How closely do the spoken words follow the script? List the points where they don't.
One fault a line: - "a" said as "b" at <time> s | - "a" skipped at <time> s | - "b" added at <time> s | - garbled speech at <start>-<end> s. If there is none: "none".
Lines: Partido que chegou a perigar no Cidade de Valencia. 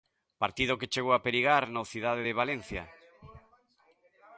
none